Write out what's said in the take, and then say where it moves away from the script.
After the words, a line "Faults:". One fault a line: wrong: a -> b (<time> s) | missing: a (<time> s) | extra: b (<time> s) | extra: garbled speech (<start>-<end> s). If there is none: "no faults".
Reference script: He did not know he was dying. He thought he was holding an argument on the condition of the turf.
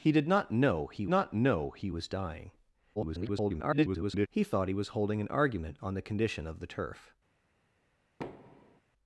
He did not know he not know he was dying. [garbled] He thought he was holding an argument on the condition of the turf.
Faults:
extra: not know he (1.1 s)
extra: garbled speech (3.0-4.3 s)